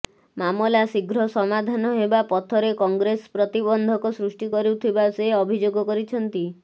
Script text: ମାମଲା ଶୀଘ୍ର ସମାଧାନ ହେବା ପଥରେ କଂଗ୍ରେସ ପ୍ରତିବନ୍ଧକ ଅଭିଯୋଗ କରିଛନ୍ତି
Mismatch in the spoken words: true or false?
true